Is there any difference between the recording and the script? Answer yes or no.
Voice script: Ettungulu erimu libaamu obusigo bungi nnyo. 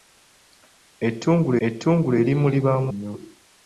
yes